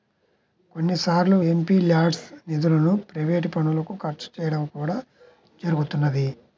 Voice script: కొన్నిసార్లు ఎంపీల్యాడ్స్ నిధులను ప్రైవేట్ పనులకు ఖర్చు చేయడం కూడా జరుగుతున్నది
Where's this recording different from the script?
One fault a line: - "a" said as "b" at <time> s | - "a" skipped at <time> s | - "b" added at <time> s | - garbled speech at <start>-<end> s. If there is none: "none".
none